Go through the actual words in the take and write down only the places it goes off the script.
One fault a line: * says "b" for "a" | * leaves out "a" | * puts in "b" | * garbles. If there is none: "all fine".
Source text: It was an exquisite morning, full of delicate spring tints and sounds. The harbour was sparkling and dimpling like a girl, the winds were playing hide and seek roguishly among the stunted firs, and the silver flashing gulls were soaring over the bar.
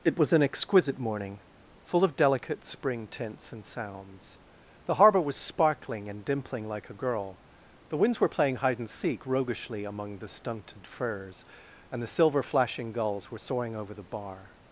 all fine